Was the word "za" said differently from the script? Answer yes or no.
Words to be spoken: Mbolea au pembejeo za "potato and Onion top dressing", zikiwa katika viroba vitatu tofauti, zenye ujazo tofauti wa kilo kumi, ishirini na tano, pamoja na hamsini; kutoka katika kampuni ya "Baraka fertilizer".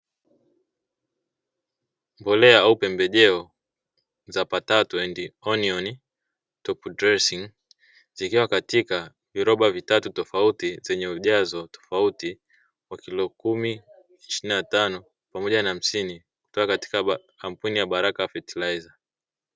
no